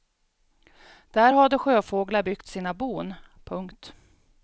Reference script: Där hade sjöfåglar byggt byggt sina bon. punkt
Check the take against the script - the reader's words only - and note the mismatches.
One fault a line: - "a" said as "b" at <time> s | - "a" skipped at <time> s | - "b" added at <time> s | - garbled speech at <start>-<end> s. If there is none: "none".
- "byggt" skipped at 2.5 s